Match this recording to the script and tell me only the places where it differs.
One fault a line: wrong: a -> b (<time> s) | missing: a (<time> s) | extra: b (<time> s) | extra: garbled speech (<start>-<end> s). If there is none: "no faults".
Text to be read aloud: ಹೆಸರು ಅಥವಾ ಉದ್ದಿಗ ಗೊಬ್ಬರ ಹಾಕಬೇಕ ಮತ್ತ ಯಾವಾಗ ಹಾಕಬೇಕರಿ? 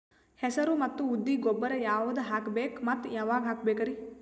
wrong: ಅಥವಾ -> ಮತ್ತು (0.8 s)
extra: ಯಾವದ (1.8 s)